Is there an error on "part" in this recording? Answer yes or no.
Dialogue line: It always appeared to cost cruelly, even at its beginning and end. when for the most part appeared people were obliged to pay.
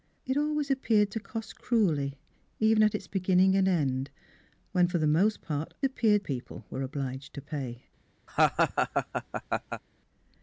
no